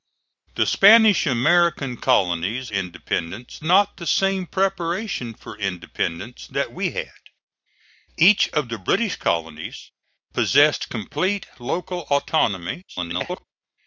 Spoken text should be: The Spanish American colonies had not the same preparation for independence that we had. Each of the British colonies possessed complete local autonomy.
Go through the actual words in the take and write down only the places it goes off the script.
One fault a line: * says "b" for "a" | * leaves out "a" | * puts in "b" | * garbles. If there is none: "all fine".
* says "independence" for "had"
* garbles